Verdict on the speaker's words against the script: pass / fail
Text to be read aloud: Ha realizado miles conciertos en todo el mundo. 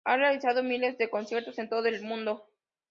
fail